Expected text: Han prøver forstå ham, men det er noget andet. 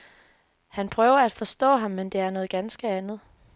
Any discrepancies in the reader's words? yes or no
yes